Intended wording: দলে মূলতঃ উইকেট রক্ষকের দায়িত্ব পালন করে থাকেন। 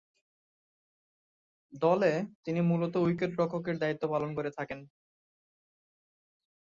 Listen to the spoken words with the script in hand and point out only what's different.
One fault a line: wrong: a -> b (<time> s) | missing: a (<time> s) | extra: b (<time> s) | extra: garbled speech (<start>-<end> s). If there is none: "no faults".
extra: তিনি (2.4 s)